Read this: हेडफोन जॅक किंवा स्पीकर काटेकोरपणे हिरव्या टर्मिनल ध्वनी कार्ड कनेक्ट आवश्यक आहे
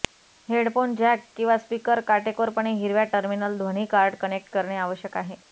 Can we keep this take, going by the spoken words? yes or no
no